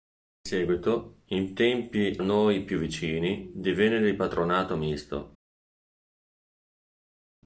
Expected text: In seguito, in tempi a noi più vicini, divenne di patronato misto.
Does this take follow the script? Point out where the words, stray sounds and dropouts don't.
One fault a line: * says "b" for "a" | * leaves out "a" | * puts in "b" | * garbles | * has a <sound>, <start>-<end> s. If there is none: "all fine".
* leaves out "a"